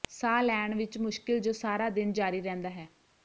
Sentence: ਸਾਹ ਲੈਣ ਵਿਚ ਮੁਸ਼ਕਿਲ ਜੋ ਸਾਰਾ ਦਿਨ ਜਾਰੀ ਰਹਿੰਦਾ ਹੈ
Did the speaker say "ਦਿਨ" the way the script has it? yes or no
yes